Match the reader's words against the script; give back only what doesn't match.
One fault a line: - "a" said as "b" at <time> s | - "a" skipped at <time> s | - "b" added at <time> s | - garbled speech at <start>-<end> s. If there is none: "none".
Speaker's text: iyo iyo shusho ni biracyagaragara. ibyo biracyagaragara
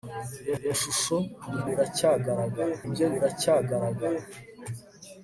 none